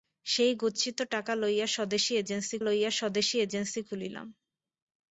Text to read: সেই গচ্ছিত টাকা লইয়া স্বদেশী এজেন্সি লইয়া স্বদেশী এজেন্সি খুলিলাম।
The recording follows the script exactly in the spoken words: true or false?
true